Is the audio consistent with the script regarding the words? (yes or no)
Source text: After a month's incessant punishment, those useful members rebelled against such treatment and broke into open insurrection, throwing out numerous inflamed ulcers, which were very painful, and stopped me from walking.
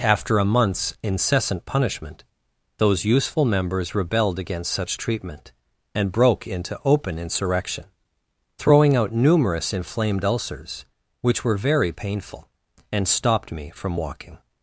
yes